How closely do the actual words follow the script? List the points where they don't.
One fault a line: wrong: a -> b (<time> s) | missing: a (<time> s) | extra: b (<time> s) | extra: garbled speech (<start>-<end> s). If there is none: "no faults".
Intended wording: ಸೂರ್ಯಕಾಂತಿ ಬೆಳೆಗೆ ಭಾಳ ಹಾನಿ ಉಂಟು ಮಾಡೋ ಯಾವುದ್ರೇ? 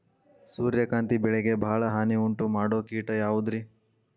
extra: ಕೇಟ (2.9 s)